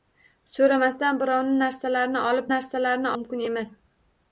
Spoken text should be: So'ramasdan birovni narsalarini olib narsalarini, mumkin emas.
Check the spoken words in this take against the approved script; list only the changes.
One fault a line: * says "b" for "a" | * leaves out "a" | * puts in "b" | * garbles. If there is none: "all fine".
all fine